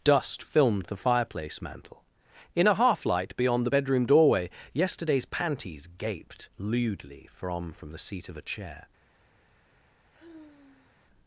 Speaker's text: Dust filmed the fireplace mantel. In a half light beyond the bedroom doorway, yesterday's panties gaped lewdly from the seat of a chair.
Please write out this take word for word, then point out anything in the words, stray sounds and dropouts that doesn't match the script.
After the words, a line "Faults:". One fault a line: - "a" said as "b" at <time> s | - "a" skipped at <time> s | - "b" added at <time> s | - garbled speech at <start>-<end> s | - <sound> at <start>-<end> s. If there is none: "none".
Dust filmed the fireplace mantel. In a half light beyond the bedroom doorway, yesterday's panties gaped lewdly from from the seat of a chair.
Faults:
- "from" added at 7.7 s
- sigh at 10.1-11.1 s